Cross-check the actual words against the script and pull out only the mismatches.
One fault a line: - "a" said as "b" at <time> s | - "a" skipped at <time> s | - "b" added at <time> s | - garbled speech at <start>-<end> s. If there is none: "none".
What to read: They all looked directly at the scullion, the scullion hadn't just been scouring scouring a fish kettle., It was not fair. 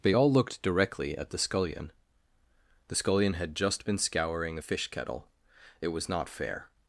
- "hadn't" said as "had" at 3.3 s
- "scouring" skipped at 4.6 s